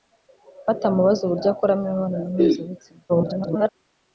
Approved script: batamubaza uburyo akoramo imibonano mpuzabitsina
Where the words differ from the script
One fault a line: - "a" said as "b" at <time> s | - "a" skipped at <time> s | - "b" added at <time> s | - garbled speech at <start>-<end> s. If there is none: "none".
- garbled speech at 3.1-3.7 s